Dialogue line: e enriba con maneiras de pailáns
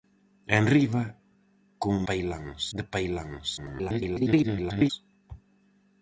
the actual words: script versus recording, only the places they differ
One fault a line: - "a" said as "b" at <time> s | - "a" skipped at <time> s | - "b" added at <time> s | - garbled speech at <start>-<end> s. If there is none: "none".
- "maneiras" said as "pailáns" at 2.1 s
- garbled speech at 3.6-4.9 s